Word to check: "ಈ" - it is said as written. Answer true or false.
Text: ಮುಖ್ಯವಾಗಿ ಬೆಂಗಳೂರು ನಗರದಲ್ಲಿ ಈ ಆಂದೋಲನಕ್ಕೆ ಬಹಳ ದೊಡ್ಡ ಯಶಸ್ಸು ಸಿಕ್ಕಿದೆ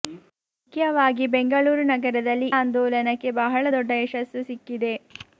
false